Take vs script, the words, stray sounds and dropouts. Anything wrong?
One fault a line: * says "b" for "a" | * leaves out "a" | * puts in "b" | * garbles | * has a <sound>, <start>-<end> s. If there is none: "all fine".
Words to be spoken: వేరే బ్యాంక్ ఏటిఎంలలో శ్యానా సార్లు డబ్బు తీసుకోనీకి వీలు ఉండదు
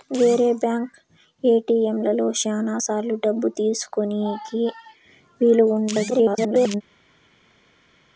* garbles